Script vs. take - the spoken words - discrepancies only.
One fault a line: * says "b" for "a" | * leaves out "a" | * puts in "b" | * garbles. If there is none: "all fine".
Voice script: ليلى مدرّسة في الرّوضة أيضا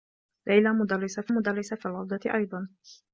* puts in "مدرّسة في"